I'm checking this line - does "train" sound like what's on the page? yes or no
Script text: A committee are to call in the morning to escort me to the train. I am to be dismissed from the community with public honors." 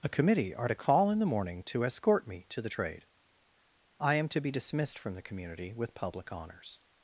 no